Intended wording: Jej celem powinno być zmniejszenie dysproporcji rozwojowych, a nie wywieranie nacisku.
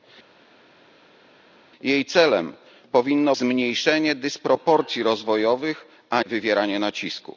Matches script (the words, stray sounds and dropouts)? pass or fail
fail